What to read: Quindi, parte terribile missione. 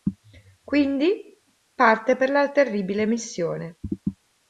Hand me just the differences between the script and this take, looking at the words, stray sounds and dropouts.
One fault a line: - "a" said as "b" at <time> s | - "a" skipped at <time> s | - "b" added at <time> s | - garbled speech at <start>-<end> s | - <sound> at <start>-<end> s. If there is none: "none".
- "per la" added at 2.1 s